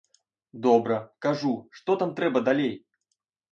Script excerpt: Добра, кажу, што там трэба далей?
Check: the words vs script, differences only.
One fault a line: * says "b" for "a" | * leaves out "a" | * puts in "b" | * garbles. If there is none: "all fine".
all fine